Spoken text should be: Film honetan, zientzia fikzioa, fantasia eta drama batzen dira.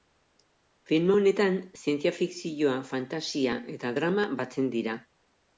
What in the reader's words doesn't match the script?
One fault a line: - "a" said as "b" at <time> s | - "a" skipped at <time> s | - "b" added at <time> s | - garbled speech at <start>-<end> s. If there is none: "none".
none